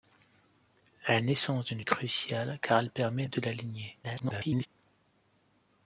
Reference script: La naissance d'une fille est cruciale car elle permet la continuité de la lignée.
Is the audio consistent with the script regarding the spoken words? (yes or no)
no